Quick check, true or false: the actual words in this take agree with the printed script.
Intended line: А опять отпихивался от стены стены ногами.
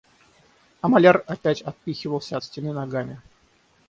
false